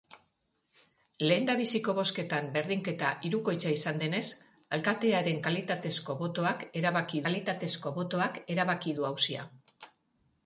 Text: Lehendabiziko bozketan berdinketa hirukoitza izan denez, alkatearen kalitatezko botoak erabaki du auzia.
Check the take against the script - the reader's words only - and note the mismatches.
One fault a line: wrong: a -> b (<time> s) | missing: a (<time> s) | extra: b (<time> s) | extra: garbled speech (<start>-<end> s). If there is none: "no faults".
extra: kalitatezko botoak erabaki (7.3 s)